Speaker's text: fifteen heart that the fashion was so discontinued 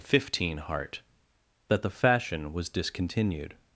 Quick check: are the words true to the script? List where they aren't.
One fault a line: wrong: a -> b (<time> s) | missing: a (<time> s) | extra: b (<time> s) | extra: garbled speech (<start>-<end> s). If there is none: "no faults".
missing: so (2.7 s)